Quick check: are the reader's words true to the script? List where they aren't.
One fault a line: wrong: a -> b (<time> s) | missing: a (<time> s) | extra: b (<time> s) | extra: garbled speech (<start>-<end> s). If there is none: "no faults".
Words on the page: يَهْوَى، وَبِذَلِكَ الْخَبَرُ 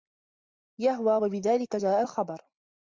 extra: جَاءَ (1.7 s)